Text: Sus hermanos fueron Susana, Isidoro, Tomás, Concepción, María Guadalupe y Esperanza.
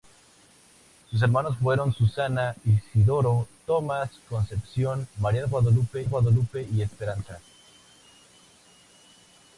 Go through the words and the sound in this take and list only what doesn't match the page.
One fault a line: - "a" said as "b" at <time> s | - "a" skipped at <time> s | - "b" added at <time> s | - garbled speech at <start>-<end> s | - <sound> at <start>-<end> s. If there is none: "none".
- "Guadalupe" added at 6.1 s